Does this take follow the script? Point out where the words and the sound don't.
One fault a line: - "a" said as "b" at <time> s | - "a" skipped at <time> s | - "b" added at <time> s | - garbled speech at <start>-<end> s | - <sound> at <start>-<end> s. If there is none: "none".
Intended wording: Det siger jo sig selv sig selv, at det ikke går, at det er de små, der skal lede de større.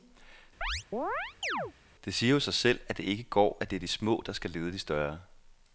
- chirp at 0.6-1.7 s
- "sig selv" skipped at 2.8 s